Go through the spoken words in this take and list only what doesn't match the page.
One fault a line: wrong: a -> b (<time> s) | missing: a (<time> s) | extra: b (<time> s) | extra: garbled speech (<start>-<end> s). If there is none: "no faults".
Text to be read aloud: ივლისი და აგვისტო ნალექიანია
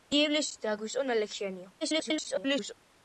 extra: garbled speech (1.8-2.7 s)